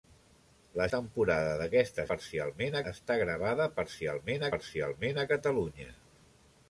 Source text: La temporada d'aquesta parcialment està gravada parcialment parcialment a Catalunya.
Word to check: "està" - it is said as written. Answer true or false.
true